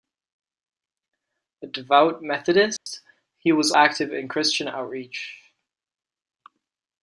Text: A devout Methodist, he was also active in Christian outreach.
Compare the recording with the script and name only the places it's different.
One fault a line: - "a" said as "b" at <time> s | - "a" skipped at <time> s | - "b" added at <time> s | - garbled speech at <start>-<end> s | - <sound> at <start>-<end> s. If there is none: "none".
- dropout at 2.8-2.9 s
- "also" skipped at 3.7 s